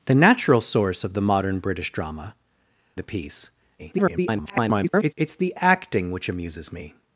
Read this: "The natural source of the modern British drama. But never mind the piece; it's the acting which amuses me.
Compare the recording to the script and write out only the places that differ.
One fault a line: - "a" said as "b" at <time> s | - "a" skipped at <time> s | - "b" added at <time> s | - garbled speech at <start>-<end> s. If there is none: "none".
- "But never mind" skipped at 2.4 s
- garbled speech at 3.8-5.1 s